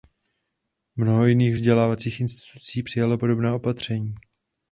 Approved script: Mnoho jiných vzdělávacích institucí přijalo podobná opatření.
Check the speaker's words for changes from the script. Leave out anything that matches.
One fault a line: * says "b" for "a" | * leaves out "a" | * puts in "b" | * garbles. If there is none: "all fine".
all fine